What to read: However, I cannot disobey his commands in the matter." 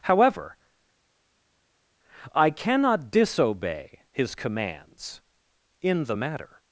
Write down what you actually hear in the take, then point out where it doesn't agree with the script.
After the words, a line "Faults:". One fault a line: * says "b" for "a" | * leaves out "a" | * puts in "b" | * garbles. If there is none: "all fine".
However, I cannot disobey his commands in the matter."
Faults:
all fine